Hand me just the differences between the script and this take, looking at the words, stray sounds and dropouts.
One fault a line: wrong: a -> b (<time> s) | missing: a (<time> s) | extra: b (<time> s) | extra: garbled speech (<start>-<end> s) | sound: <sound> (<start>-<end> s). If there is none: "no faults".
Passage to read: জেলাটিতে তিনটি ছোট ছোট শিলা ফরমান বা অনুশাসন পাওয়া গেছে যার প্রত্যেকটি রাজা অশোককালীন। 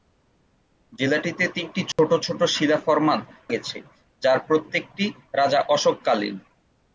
sound: dropout (1.9-2.0 s)
missing: বা অনুশাসন পাওয়া (3.2 s)